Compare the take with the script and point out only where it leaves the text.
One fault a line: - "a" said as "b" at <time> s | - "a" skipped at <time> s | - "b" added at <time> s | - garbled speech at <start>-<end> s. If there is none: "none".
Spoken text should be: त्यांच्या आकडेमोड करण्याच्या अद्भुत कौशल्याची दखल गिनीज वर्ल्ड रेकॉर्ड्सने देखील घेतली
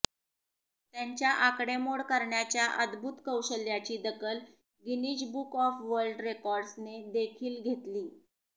- "बुक ऑफ" added at 5.3 s